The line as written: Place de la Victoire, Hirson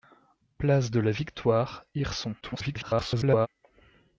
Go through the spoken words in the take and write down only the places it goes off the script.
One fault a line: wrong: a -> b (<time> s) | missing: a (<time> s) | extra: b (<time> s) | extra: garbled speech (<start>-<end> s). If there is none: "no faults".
extra: garbled speech (2.4-3.5 s)